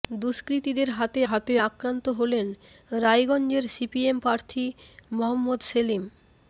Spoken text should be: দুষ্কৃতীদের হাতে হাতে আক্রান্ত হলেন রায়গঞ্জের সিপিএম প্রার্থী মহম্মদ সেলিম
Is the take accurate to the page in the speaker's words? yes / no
yes